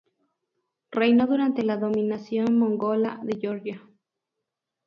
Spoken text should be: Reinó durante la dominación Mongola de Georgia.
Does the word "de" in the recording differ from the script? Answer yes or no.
no